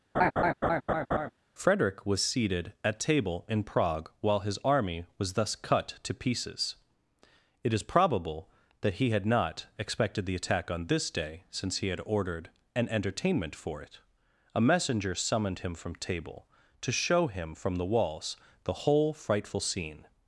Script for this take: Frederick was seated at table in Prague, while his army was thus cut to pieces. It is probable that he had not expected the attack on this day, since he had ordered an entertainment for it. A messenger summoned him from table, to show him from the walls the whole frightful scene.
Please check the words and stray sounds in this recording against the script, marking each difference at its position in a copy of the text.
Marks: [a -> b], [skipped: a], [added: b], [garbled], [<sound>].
[laugh] Frederick was seated at table in Prague, while his army was thus cut to pieces. It is probable that he had not expected the attack on this day, since he had ordered an entertainment for it. A messenger summoned him from table, to show him from the walls the whole frightful scene.